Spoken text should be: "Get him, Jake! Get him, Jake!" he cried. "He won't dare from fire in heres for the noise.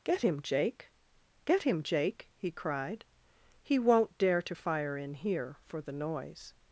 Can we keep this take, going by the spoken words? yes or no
no